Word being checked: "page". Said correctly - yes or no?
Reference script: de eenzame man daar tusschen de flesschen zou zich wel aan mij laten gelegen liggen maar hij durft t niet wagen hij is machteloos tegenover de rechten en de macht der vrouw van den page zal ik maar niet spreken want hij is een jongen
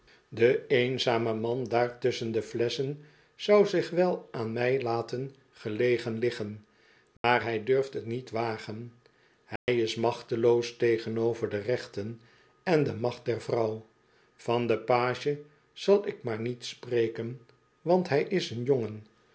yes